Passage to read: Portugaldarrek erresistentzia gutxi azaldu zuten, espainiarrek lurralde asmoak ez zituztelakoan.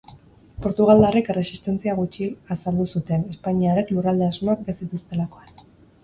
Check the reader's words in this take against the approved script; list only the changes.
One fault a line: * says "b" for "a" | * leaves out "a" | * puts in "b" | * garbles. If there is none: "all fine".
all fine